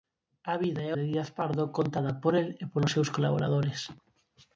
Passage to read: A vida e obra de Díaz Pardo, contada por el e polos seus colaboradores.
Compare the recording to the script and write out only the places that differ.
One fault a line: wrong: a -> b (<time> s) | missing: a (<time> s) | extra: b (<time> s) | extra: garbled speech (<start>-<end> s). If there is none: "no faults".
missing: obra (0.9 s)